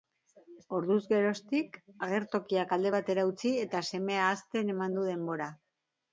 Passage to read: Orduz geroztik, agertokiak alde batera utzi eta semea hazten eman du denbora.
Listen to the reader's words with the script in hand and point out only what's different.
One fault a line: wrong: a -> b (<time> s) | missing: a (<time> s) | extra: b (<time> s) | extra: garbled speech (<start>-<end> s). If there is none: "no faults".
no faults